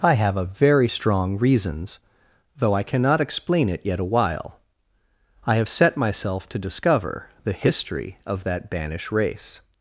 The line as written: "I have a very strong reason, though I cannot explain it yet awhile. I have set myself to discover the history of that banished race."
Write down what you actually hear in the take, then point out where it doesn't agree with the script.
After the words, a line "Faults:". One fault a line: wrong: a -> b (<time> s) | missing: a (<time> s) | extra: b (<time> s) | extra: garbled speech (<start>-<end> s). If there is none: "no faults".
"I have a very strong reasons, though I cannot explain it yet awhile. I have set myself to discover the history of that banish race."
Faults:
wrong: reason -> reasons (1.4 s)
wrong: banished -> banish (8.7 s)